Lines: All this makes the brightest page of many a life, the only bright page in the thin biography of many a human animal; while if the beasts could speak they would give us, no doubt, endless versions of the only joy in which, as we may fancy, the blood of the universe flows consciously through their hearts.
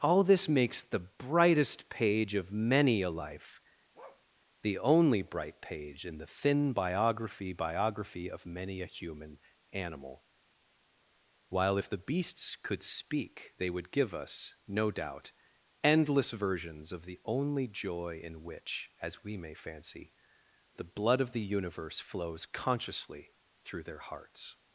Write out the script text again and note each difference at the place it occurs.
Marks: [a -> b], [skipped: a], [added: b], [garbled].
All this makes the brightest page of many a life, the only bright page in the thin biography [added: biography] of many a human animal; while if the beasts could speak they would give us, no doubt, endless versions of the only joy in which, as we may fancy, the blood of the universe flows consciously through their hearts.